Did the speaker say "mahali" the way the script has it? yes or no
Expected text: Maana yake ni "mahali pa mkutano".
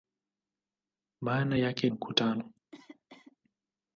no